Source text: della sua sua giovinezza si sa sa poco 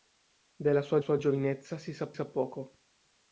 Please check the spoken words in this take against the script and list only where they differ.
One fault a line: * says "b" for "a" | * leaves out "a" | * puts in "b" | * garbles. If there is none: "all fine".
all fine